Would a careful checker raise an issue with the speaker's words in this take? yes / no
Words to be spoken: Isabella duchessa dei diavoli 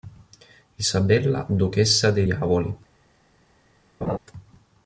no